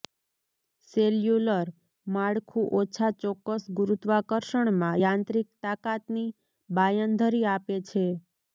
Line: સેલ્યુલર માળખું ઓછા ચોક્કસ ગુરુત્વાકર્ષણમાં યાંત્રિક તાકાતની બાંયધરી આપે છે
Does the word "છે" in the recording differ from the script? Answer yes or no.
no